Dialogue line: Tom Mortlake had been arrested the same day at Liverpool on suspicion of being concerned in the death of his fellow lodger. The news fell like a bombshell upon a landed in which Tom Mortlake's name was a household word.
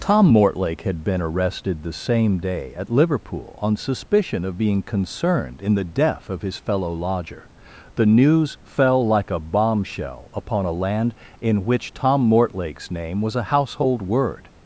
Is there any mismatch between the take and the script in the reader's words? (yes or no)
yes